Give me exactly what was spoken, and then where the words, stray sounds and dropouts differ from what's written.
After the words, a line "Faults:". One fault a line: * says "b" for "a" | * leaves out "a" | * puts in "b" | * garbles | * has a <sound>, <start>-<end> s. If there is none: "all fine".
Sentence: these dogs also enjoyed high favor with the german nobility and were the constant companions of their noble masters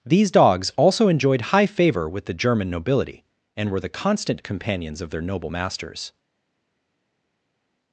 these dogs also enjoyed high favor with the german nobility and were the constant companions of their noble masters
Faults:
all fine